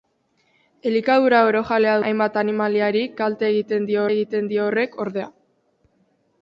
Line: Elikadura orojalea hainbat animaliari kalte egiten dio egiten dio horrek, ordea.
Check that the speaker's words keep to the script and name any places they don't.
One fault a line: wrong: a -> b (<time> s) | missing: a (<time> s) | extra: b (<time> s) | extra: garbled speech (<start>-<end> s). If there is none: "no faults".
no faults